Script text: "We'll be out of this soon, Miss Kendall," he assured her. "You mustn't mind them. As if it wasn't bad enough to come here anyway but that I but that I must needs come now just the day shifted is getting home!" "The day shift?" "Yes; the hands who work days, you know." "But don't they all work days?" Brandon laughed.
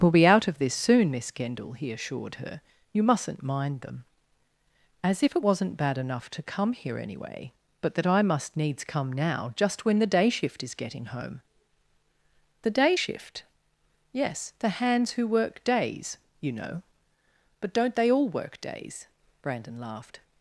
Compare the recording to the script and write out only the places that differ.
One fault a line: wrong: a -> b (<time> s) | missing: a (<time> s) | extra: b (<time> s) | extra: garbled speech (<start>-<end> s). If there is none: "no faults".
missing: but that I (8.2 s)
extra: when (9.8 s)
wrong: shifted -> shift (10.3 s)